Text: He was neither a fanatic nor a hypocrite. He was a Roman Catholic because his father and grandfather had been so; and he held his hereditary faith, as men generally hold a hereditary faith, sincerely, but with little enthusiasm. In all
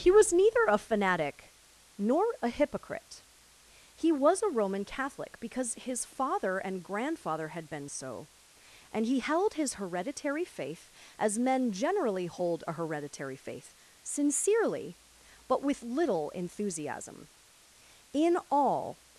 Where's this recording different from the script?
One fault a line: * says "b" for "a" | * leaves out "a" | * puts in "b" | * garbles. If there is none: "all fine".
all fine